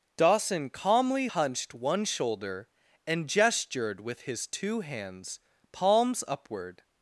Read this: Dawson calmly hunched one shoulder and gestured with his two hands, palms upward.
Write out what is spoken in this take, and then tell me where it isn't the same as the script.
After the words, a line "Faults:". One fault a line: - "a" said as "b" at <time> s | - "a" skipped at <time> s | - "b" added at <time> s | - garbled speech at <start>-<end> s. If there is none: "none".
Dawson calmly hunched one shoulder and gestured with his two hands, palms upward.
Faults:
none